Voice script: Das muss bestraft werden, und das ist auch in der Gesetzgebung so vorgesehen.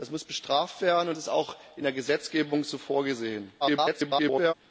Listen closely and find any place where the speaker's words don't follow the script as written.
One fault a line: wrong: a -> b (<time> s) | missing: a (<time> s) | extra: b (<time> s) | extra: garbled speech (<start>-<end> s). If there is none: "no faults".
missing: das (1.1 s)
extra: garbled speech (3.6-4.5 s)